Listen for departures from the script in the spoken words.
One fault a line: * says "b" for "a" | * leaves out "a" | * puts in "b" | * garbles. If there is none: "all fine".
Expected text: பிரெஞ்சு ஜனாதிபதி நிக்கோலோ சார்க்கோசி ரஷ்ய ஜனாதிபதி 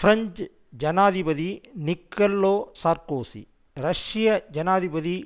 all fine